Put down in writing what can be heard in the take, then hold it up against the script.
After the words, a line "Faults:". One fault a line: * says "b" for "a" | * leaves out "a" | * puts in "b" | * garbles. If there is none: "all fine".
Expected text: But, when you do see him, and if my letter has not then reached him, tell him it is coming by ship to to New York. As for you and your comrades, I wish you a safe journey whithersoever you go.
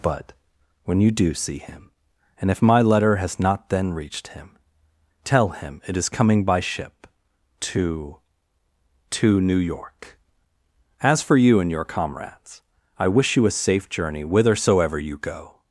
But, when you do see him, and if my letter has not then reached him, tell him it is coming by ship to to New York. As for you and your comrades, I wish you a safe journey whithersoever you go.
Faults:
all fine